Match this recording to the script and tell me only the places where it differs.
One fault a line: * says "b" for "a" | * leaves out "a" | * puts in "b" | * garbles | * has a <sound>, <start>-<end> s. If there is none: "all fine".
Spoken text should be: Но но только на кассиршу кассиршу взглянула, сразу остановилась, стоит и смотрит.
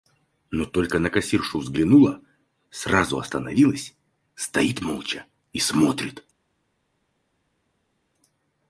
* leaves out "но"
* leaves out "кассиршу"
* puts in "молча"